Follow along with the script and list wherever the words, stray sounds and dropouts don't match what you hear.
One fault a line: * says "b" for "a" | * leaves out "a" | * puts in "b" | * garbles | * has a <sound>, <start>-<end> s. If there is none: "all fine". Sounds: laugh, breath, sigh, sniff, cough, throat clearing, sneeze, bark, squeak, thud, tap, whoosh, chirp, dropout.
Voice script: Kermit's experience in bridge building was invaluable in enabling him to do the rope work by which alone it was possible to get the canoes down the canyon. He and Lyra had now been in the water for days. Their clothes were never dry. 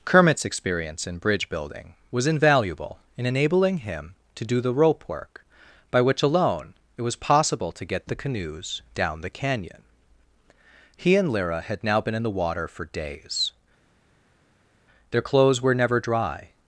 all fine